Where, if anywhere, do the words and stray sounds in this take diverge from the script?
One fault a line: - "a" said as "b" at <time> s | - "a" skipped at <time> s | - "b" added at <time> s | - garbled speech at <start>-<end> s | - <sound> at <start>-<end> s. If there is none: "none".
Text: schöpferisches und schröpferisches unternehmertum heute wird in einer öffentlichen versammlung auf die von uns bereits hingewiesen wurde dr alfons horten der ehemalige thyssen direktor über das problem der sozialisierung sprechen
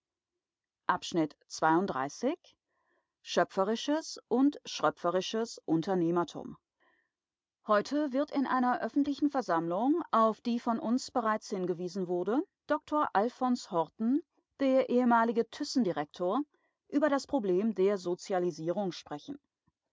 none